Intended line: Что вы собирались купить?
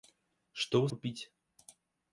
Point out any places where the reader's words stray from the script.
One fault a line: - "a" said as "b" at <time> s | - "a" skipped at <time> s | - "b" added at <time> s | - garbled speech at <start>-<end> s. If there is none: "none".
- "собирались" skipped at 0.9 s